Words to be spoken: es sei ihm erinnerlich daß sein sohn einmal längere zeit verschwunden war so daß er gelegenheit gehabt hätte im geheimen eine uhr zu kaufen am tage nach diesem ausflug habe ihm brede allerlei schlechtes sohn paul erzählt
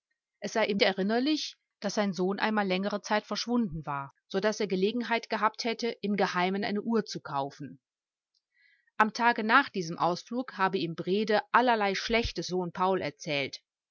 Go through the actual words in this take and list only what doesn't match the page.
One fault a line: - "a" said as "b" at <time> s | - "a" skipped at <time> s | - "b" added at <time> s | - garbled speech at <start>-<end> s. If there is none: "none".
none